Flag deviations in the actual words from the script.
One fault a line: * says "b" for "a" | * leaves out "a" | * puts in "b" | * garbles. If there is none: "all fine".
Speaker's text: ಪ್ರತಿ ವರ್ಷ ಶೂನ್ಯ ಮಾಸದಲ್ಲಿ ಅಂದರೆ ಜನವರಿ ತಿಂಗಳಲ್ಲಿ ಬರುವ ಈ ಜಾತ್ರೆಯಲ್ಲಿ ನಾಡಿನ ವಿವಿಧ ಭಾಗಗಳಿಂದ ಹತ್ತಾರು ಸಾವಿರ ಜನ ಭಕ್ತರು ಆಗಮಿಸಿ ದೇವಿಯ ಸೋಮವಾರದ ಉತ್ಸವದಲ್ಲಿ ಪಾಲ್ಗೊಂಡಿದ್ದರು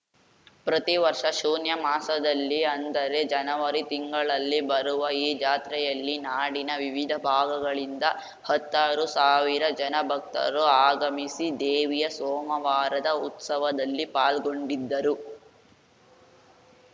all fine